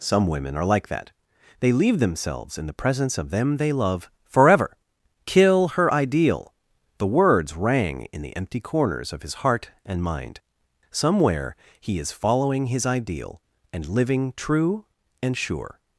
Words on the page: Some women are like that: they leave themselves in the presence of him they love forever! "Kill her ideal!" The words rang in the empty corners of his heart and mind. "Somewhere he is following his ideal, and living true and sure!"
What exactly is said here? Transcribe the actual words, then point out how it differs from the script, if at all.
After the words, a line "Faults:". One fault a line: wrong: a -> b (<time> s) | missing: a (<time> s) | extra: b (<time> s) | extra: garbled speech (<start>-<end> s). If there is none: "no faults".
Some women are like that: they leave themselves in the presence of them they love forever! "Kill her ideal!" The words rang in the empty corners of his heart and mind. "Somewhere he is following his ideal, and living true and sure!"
Faults:
wrong: him -> them (3.3 s)